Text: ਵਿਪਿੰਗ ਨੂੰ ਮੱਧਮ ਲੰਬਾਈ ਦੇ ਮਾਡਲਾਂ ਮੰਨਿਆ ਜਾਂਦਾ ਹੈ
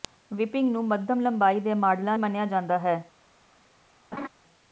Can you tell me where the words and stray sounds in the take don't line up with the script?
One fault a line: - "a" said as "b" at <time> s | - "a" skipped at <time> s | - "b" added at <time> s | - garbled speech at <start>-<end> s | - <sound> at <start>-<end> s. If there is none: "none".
- laugh at 4.1-4.3 s